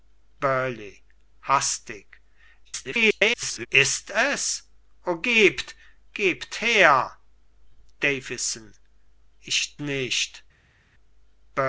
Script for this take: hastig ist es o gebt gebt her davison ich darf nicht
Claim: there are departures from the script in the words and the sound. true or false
true